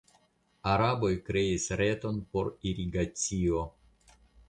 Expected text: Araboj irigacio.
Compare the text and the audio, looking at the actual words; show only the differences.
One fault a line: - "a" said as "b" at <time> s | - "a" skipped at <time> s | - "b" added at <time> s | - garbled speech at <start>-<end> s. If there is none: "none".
- "kreis reton por" added at 1.3 s